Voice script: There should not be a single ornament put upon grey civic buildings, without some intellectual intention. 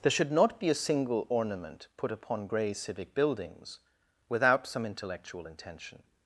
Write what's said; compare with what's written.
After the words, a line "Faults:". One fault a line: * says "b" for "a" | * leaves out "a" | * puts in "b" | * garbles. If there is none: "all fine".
There should not be a single ornament put upon grey civic buildings, without some intellectual intention.
Faults:
all fine